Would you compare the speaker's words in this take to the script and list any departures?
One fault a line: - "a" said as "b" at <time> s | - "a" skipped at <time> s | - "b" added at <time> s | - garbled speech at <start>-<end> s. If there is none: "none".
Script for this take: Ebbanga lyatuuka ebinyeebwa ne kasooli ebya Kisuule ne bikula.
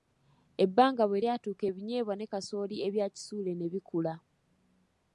- "bwe" added at 1.1 s